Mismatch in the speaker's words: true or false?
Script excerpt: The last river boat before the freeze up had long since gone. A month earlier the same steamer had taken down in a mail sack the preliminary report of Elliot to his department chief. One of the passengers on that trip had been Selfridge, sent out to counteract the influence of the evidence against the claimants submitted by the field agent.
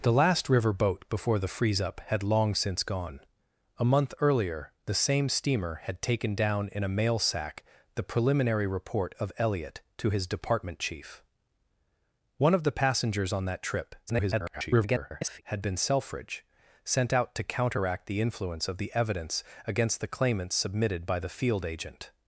true